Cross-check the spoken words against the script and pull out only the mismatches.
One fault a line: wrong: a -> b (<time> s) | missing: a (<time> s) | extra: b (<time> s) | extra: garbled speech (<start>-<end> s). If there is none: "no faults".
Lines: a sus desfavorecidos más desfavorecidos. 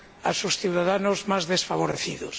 wrong: desfavorecidos -> ciudadanos (0.6 s)